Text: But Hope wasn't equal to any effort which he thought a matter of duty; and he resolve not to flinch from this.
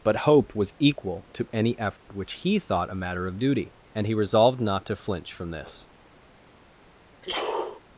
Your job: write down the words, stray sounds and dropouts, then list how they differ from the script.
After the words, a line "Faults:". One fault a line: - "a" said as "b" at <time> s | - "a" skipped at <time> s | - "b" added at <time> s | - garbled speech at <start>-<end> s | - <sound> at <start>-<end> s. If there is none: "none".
But Hope was equal to any effort which he thought a matter of duty; and he resolved not to flinch from this.
Faults:
- "wasn't" said as "was" at 0.6 s
- dropout at 2.0-2.1 s
- "resolve" said as "resolved" at 4.2 s
- sneeze at 7.2-7.8 s